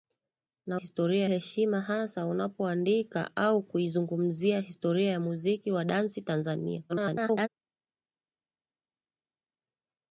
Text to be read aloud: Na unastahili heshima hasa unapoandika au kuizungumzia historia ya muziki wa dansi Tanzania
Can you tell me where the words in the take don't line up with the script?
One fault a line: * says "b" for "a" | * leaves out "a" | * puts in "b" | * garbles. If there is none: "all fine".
* says "historia" for "unastahili"
* garbles